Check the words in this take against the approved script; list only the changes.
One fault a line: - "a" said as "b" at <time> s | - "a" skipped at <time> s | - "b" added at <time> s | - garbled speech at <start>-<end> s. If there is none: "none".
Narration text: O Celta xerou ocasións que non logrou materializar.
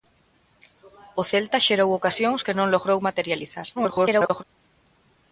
- garbled speech at 3.8-4.4 s